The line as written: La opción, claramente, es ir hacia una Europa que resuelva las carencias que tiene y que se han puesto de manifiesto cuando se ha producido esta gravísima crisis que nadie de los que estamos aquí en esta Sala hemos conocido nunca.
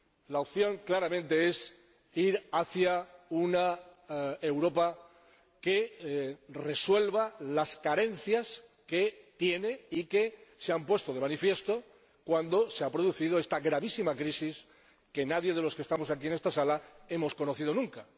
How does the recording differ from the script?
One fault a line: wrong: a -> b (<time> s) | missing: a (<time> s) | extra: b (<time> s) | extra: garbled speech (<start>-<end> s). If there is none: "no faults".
no faults